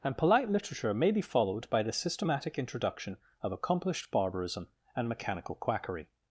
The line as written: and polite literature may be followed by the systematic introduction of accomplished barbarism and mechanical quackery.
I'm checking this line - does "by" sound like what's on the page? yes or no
yes